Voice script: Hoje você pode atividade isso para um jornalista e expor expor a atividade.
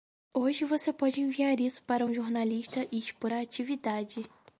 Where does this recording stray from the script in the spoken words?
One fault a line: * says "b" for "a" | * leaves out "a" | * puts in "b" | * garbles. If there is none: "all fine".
* says "enviar" for "atividade"
* leaves out "expor"